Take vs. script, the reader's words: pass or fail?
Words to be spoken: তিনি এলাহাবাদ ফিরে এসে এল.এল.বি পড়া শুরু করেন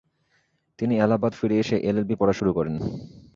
pass